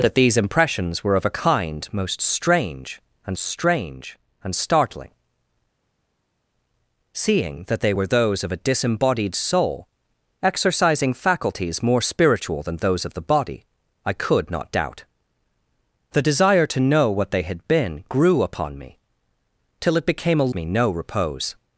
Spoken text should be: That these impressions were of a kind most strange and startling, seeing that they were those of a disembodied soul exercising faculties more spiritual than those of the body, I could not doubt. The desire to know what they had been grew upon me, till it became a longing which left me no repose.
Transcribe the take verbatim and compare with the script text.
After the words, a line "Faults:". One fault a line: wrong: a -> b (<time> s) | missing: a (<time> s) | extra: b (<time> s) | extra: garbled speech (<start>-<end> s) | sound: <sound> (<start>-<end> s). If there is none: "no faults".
That these impressions were of a kind most strange and strange and startling, seeing that they were those of a disembodied soul exercising faculties more spiritual than those of the body, I could not doubt. The desire to know what they had been grew upon me, till it became a me no repose.
Faults:
extra: strange and (3.4 s)
missing: longing which left (20.5 s)